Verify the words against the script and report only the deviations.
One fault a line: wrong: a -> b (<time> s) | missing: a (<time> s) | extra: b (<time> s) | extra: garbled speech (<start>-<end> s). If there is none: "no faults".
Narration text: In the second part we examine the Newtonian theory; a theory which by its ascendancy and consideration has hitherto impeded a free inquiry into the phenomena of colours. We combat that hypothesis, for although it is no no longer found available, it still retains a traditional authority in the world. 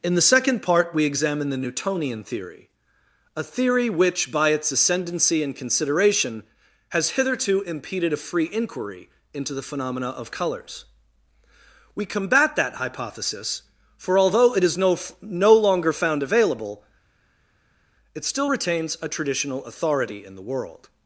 no faults